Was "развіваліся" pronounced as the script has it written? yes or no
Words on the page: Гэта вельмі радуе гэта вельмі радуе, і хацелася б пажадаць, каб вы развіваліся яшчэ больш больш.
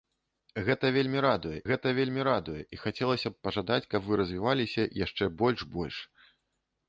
yes